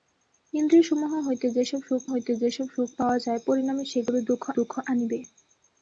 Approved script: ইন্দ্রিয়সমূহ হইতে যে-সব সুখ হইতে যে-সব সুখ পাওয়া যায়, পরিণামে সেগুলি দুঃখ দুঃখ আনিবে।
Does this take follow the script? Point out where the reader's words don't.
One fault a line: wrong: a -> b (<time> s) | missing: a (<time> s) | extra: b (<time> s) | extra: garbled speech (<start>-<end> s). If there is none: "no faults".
no faults